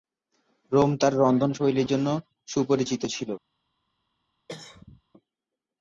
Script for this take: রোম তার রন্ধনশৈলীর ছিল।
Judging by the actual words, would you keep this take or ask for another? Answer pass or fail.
fail